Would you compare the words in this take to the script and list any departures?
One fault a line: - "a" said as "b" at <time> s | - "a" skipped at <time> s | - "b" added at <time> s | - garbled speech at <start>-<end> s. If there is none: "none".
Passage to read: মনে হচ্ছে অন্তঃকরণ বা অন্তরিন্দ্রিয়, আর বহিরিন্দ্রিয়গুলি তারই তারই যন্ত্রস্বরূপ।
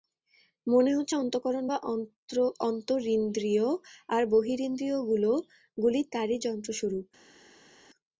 - "তারই" skipped at 6.4 s